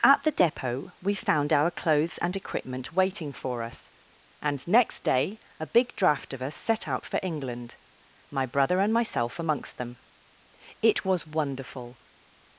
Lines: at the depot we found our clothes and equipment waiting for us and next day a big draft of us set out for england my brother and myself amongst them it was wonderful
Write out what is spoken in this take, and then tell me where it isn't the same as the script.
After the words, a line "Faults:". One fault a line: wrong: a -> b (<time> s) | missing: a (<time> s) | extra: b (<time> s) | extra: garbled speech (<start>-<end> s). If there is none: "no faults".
at the depot we found our clothes and equipment waiting for us and next day a big draft of us set out for england my brother and myself amongst them it was wonderful
Faults:
no faults